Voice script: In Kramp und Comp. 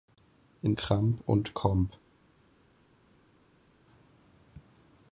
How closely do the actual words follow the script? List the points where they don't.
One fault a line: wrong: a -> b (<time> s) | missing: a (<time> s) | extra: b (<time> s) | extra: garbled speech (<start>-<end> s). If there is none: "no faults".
no faults